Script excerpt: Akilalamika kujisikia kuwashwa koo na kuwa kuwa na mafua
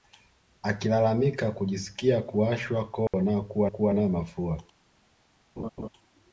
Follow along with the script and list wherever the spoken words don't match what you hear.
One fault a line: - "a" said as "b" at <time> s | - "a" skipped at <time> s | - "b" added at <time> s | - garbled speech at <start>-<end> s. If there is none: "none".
none